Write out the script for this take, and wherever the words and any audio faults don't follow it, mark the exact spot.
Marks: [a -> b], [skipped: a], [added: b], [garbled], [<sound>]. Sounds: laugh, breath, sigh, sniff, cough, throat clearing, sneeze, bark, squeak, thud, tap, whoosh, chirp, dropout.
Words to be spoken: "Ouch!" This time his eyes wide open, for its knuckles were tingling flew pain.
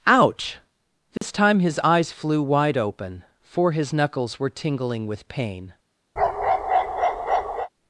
"Ouch!" This [dropout] time his eyes [added: flew] wide open, for [its -> his] knuckles were tingling [flew -> with] pain. [bark]